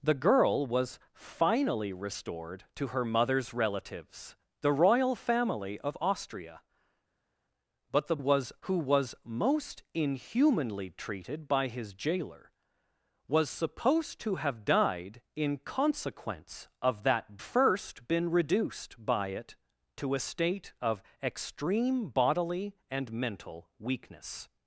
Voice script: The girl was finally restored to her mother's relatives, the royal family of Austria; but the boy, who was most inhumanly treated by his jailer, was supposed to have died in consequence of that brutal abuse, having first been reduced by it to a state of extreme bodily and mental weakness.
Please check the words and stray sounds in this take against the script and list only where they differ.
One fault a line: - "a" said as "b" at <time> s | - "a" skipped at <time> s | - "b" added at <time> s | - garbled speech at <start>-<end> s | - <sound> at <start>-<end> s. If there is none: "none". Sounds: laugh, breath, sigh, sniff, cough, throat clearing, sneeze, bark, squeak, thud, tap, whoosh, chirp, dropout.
- "boy" said as "was" at 8.2 s
- "brutal abuse having" skipped at 17.4 s